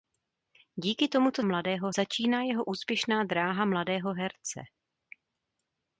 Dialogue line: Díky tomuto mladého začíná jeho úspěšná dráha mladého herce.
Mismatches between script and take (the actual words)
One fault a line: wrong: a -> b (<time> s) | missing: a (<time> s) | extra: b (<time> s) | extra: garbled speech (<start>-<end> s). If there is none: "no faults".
no faults